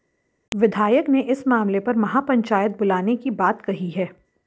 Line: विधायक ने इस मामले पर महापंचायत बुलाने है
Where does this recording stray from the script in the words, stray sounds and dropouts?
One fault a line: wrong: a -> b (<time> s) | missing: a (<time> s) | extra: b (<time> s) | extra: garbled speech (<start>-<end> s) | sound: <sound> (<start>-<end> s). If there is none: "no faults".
extra: की बात कही (3.2 s)